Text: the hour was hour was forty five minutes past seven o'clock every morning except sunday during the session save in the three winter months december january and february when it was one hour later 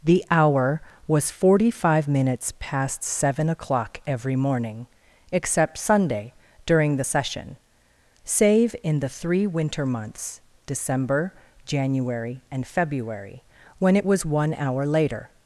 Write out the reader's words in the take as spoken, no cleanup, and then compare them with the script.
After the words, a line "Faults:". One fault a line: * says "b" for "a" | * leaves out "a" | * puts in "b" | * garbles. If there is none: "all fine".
the hour was forty five minutes past seven o'clock every morning except sunday during the session save in the three winter months december january and february when it was one hour later
Faults:
* leaves out "hour was"